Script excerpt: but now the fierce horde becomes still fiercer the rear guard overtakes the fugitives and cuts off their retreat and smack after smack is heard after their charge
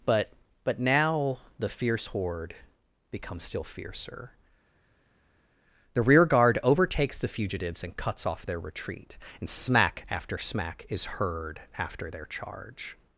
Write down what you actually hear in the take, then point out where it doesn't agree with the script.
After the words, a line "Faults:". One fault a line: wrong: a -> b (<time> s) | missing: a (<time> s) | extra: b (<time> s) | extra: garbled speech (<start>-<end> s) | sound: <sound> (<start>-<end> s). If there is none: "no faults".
but but now the fierce horde becomes still fiercer the rear guard overtakes the fugitives and cuts off their retreat and smack after smack is heard after their charge
Faults:
extra: but (0.6 s)